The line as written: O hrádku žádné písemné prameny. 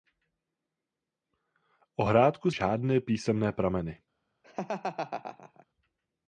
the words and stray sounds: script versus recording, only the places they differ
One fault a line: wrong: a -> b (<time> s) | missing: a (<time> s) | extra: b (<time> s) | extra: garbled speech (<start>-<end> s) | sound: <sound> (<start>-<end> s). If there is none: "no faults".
sound: laugh (4.4-5.7 s)